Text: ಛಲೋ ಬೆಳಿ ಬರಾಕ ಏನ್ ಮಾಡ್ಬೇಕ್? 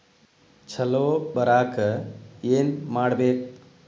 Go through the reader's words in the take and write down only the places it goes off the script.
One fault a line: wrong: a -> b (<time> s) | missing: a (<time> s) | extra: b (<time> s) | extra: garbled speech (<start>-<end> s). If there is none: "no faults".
missing: ಬೆಳಿ (1.1 s)